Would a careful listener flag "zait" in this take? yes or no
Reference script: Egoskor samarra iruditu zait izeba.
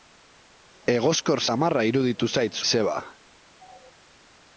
no